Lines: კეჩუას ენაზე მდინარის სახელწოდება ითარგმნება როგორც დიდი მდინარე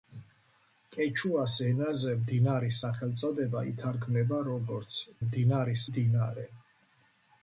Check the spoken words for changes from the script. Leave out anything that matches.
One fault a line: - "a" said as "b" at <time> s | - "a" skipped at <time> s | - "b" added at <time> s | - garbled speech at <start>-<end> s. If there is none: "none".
- "დიდი" said as "მდინარის" at 5.3 s